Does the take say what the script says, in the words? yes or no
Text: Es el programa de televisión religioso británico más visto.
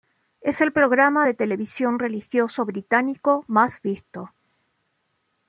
yes